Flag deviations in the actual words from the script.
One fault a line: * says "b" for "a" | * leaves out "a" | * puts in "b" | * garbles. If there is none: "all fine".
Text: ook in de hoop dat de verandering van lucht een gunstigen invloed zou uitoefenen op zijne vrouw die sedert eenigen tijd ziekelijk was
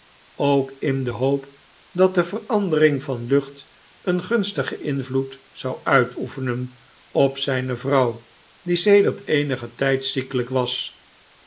all fine